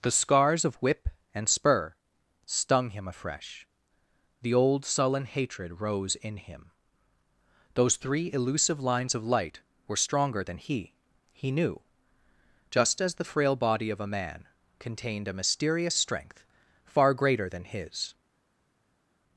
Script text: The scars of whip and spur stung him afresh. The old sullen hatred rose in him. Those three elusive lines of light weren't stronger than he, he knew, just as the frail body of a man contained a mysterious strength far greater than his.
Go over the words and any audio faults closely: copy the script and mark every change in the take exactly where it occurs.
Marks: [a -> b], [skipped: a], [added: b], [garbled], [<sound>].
The scars of whip and spur stung him afresh. The old sullen hatred rose in him. Those three elusive lines of light [weren't -> were] stronger than he, he knew, just as the frail body of a man contained a mysterious strength far greater than his.